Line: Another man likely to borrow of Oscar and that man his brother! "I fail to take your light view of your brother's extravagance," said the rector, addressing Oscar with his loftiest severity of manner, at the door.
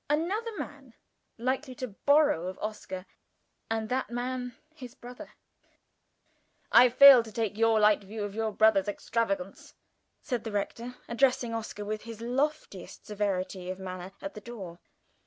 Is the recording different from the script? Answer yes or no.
no